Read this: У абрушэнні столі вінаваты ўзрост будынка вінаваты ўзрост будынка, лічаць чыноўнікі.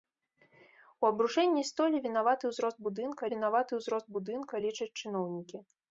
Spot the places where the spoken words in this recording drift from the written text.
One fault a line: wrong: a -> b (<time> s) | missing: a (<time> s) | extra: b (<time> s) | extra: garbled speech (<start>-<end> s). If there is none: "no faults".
no faults